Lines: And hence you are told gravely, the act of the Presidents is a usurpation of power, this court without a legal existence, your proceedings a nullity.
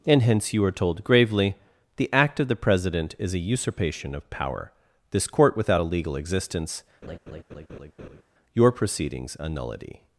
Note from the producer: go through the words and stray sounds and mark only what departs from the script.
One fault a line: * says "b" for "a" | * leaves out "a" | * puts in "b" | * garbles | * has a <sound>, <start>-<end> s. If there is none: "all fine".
* says "President" for "Presidents"
* has a laugh, 7.0-8.2 s